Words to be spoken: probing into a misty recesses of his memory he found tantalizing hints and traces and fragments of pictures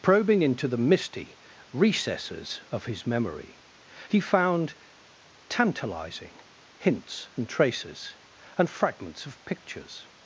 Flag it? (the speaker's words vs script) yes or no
yes